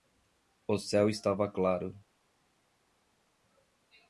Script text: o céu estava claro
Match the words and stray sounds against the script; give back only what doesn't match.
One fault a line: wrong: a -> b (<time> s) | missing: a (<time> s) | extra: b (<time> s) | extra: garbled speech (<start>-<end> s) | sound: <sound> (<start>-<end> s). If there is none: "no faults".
no faults